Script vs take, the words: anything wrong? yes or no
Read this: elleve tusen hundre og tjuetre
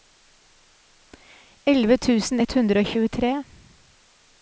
yes